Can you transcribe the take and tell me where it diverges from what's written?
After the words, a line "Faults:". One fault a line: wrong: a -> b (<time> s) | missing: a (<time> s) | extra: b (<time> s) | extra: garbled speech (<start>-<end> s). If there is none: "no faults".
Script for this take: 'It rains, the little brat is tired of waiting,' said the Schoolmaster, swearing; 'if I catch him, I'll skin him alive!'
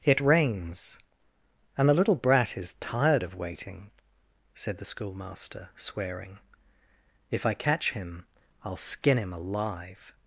'It rains, and the little brat is tired of waiting,' said the Schoolmaster, swearing; 'if I catch him, I'll skin him alive!'
Faults:
extra: and (1.8 s)